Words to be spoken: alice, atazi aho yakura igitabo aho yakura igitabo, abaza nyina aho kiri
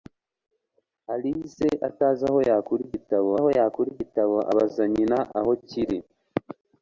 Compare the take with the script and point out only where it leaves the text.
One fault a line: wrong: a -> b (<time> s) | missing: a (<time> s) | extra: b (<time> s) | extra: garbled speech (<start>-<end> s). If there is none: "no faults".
no faults